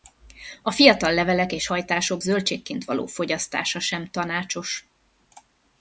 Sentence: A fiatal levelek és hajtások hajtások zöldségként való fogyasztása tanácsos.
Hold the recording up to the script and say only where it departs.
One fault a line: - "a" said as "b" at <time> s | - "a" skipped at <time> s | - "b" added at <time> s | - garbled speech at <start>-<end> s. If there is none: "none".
- "hajtások" skipped at 2.2 s
- "sem" added at 3.8 s